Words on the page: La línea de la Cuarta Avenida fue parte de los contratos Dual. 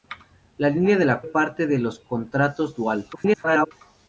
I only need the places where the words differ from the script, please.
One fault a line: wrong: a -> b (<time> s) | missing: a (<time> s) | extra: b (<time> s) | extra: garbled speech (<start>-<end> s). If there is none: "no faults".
missing: Cuarta Avenida fue (1.2 s)
extra: garbled speech (3.1-3.7 s)